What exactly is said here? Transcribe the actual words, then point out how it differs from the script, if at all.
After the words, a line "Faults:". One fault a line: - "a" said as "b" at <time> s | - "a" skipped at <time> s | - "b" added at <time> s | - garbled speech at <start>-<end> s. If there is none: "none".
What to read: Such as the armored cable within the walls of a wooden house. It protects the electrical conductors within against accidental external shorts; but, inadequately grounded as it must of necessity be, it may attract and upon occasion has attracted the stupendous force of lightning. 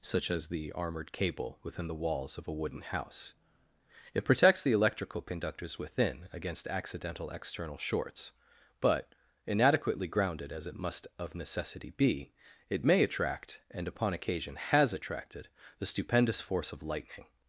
Such as the armored cable within the walls of a wooden house. It protects the electrical conductors within against accidental external shorts; but, inadequately grounded as it must of necessity be, it may attract and upon occasion has attracted the stupendous force of lightning.
Faults:
none